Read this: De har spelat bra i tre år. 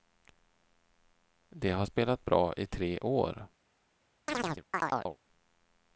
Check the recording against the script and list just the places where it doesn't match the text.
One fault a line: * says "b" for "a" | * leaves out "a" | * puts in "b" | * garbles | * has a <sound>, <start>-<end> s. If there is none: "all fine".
* has a chirp, 4.3-5.2 s